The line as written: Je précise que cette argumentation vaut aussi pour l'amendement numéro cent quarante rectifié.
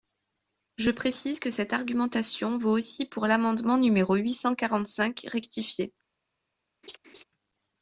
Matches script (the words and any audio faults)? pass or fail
fail